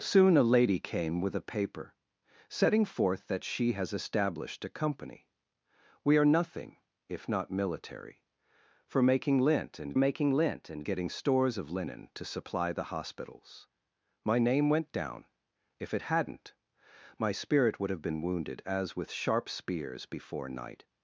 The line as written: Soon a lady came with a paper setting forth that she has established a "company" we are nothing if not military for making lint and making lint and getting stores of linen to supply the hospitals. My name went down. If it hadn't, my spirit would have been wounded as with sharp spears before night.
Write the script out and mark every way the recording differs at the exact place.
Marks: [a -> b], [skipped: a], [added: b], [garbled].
Soon a lady came with a paper setting forth that she has established a "company" we are nothing if not military for making lint and making lint and getting stores of linen to supply the hospitals. My name went down. If it hadn't, my spirit would have been wounded as with sharp spears before night.